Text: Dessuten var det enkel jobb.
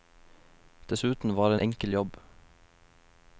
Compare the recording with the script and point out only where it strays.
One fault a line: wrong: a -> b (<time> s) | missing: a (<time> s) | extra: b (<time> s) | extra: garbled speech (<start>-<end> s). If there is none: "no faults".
no faults